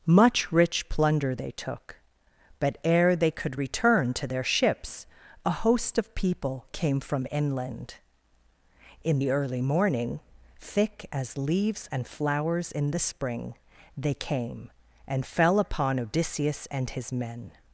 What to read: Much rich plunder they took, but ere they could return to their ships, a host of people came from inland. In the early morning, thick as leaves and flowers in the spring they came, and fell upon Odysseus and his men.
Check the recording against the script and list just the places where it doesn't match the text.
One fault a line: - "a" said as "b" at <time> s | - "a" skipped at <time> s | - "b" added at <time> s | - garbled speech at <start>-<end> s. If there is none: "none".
none